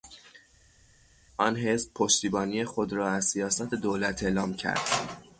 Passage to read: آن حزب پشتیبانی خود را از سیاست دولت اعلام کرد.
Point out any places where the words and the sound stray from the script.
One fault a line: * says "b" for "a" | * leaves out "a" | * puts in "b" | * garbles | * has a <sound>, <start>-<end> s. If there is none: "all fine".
all fine